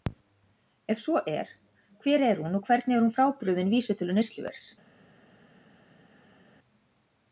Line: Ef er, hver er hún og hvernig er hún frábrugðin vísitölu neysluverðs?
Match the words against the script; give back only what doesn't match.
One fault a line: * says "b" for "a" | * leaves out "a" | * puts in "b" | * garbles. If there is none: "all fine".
* puts in "svo"